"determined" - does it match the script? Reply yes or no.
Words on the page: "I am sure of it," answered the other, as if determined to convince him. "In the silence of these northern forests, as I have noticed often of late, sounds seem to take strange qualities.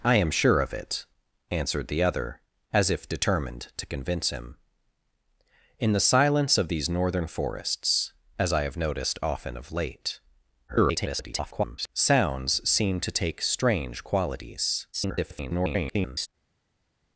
yes